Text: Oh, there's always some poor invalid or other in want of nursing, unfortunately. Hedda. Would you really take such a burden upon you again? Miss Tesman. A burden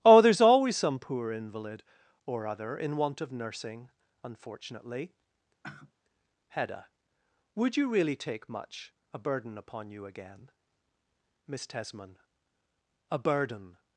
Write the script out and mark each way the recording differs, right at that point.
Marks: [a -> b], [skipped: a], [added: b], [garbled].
Oh, there's always some poor invalid or other in want of nursing, unfortunately. Hedda. Would you really take [such -> much] a burden upon you again? Miss Tesman. A burden